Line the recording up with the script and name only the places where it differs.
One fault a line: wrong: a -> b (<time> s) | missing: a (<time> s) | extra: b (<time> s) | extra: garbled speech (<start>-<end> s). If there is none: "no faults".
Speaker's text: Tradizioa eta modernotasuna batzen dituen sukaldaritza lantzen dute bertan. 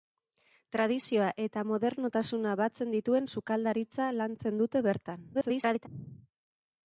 extra: garbled speech (5.3-5.9 s)